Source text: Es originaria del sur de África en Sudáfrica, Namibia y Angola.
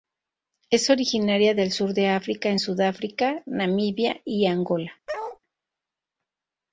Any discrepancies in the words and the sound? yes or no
yes